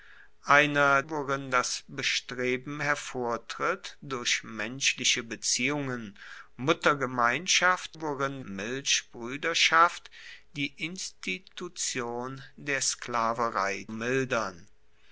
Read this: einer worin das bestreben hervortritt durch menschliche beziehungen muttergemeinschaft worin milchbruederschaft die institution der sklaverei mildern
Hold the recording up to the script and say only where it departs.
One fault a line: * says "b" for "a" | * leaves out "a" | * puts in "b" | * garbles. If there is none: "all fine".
all fine